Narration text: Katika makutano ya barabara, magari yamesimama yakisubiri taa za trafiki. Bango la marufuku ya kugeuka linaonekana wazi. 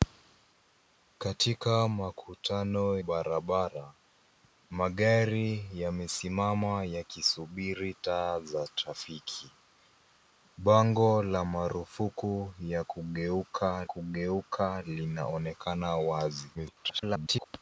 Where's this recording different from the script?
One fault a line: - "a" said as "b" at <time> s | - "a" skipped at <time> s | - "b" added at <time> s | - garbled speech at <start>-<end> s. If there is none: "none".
- "ya" skipped at 3.0 s
- "kugeuka" added at 13.8 s
- garbled speech at 16.5-17.5 s